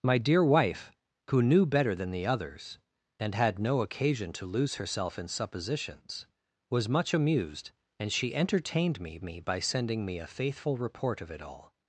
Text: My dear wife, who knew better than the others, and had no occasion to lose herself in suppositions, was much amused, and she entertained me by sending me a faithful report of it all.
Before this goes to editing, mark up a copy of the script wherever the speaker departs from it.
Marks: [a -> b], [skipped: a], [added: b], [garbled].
My dear wife, who knew better than the others, and had no occasion to lose herself in suppositions, was much amused, and she entertained me [added: me] by sending me a faithful report of it all.